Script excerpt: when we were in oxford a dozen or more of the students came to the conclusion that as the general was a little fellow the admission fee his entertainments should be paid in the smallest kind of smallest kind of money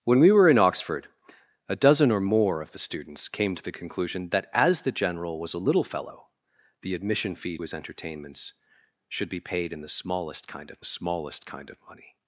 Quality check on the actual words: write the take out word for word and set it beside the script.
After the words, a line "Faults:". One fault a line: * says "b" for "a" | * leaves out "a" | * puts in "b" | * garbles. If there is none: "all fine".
when we were in oxford a dozen or more of the students came to the conclusion that as the general was a little fellow the admission fee his entertainments should be paid in the smallest kind of smallest kind of money
Faults:
all fine